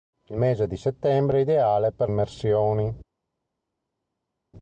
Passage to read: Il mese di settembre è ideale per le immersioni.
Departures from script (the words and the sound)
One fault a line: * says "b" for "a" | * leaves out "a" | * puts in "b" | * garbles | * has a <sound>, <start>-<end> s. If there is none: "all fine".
* leaves out "le"